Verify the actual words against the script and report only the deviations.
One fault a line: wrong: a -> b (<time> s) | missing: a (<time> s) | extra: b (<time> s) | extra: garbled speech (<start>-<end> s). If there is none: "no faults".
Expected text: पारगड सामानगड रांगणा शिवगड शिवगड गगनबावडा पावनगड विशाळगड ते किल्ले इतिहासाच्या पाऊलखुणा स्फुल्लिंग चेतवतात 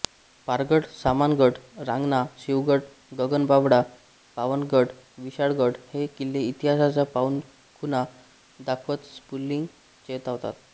missing: शिवगड (2.8 s)
wrong: ते -> हे (5.9 s)
extra: दाखवत (8.6 s)